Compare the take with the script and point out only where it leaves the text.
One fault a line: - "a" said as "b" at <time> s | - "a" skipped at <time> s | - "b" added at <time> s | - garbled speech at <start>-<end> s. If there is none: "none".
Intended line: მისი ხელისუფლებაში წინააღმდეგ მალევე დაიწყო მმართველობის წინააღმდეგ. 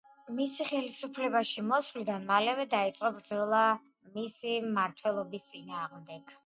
- "წინააღმდეგ" said as "მოსვლიდან" at 1.7 s
- "ბრძოლა მისი" added at 3.2 s